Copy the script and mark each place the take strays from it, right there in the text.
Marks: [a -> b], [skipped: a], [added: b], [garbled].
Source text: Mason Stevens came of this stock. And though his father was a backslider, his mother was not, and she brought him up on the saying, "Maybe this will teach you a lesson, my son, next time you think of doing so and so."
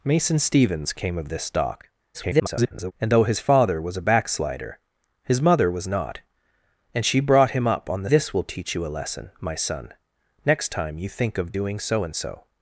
Mason Stevens came of this stock. [garbled] And though his father was a backslider, his mother was not, and she brought him up on the [skipped: saying, "Maybe] this will teach you a lesson, my son, next time you think of doing so and so."